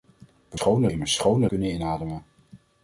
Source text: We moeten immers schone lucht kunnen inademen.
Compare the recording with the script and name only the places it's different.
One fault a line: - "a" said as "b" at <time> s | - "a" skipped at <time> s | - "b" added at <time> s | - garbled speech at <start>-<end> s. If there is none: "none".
- "moeten" said as "schone" at 0.5 s
- "lucht" skipped at 1.5 s